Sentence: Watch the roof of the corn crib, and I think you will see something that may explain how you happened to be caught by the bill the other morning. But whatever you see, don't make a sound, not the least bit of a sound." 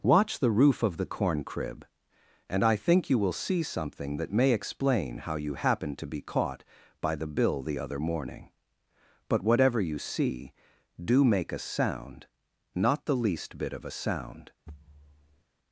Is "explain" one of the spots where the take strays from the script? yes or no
no